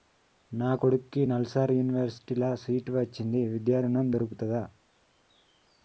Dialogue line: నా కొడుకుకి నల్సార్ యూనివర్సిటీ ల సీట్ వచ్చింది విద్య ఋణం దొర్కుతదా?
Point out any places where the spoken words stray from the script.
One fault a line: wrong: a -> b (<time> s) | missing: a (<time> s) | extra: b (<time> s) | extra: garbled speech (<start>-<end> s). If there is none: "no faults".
no faults